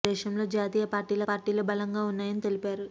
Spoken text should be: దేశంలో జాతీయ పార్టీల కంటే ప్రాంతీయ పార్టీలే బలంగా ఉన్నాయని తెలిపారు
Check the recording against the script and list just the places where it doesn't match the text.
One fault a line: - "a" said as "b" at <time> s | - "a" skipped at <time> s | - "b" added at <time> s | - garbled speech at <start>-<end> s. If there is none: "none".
- "కంటే ప్రాంతీయ" skipped at 1.2 s